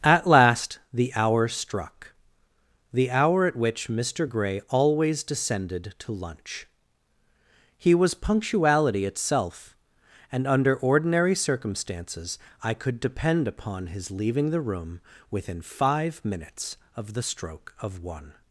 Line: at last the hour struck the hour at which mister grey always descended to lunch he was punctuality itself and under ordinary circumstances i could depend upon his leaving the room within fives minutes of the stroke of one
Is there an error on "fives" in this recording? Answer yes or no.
yes